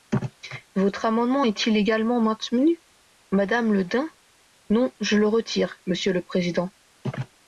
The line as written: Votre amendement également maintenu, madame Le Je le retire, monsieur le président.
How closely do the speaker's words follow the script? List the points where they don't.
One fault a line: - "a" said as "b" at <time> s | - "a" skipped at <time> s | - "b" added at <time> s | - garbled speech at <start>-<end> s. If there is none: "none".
- "est il" added at 1.4 s
- "Dain Non" added at 3.8 s